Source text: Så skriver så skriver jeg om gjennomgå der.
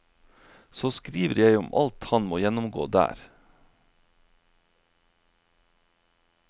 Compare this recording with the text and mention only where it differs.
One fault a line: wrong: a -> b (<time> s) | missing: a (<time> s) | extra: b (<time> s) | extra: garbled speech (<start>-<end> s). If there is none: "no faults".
wrong: så skriver jeg om -> jeg om alt han må (1.4 s)